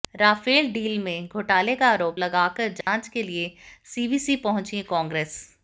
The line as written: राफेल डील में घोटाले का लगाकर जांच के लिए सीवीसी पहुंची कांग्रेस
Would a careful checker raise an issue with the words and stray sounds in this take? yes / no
yes